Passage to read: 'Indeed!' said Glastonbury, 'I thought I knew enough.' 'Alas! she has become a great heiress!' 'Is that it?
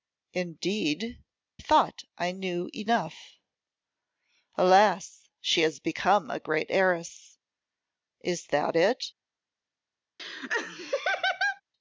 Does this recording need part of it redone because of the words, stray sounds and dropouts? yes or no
yes